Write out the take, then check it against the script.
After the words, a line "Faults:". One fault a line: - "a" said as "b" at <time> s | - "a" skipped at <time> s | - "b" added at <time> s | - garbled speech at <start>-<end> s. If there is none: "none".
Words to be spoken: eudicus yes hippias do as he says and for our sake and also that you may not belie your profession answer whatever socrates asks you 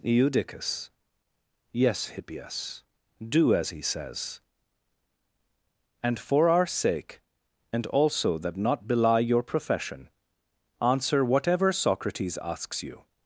eudicus yes hippias do as he says and for our sake and also that not belie your profession answer whatever socrates asks you
Faults:
- "you may" skipped at 8.6 s